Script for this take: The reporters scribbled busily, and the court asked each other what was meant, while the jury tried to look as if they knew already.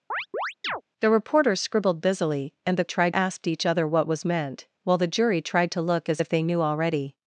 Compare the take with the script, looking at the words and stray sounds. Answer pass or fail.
fail